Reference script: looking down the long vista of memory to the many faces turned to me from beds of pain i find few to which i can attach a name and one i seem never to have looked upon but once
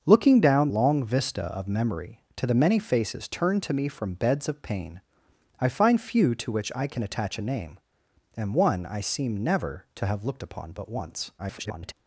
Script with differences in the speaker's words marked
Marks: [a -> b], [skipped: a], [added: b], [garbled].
looking down [skipped: the] long vista of memory to the many faces turned to me from beds of pain i find few to which i can attach a name and one i seem never to have looked upon but once [garbled]